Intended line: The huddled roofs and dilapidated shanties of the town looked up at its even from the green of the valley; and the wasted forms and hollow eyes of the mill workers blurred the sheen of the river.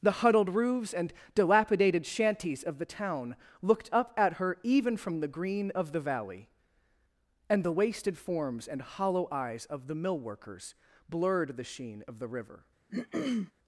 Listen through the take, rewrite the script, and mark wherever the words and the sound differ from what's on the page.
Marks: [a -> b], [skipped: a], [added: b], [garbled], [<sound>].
The huddled roofs and dilapidated shanties of the town looked up at [its -> her] even from the green of the valley; and the wasted forms and hollow eyes of the mill workers blurred the sheen of the river. [throat clearing]